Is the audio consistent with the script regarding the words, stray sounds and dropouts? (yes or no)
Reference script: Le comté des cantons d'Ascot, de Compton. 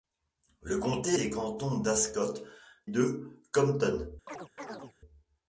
no